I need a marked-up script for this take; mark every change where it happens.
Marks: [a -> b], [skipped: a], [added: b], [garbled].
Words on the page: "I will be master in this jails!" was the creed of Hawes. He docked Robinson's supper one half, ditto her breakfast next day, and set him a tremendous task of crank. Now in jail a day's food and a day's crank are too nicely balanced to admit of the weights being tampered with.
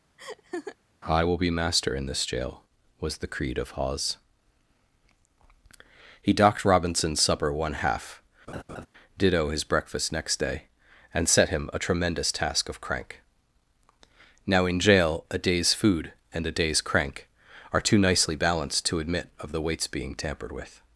"I will be master in this [jails!" -> jail] was the creed of Hawes. He docked Robinson's supper one half, ditto [her -> his] breakfast next day, and set him a tremendous task of crank. Now in jail a day's food and a day's crank are too nicely balanced to admit of the weights being tampered with.